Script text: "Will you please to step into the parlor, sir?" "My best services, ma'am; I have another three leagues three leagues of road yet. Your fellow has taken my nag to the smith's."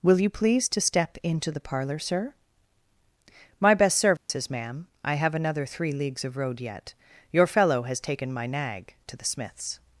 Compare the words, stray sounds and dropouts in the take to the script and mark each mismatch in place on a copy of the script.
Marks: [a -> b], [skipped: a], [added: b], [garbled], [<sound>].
"Will you please to step into the parlor, sir?" "My best services, [dropout] ma'am; I have another three leagues [skipped: three leagues] of road yet. Your fellow has taken my nag to the smith's."